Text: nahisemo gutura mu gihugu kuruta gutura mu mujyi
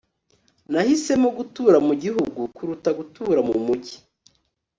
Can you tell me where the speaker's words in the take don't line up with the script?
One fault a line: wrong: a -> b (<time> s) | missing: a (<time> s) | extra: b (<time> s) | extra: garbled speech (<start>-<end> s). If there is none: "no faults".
no faults